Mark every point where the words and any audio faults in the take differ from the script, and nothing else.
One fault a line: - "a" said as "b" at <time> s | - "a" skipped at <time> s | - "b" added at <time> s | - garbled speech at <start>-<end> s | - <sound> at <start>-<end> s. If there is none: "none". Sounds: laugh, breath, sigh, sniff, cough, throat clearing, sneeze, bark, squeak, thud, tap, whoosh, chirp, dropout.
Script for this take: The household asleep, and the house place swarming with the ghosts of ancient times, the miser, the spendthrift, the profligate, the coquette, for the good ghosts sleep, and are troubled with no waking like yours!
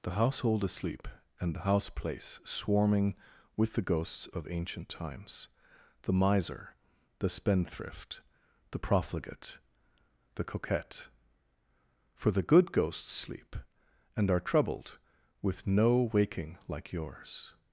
none